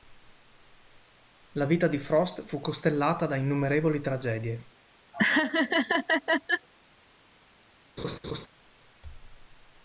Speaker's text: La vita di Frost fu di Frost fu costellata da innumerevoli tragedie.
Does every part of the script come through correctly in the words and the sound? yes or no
no